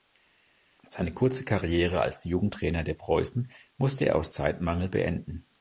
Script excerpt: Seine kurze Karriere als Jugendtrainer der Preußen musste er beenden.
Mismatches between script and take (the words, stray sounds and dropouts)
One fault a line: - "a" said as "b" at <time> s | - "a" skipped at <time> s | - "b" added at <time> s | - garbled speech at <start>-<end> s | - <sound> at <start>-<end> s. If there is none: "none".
- "aus Zeitmangel" added at 4.1 s